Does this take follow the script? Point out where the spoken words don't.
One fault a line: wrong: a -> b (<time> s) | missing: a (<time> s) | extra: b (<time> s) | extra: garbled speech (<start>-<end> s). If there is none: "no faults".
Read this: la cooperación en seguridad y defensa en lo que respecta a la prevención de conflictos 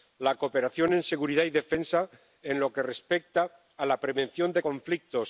no faults